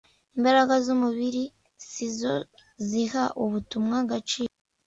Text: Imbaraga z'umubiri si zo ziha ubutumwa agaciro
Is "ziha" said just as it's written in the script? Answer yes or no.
yes